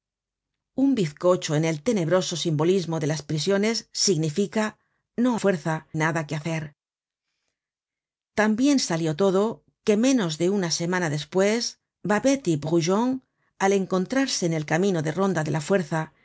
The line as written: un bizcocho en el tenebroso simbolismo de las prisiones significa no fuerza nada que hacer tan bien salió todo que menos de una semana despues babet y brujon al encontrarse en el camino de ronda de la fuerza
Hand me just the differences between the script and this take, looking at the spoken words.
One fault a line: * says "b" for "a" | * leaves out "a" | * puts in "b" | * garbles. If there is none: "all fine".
all fine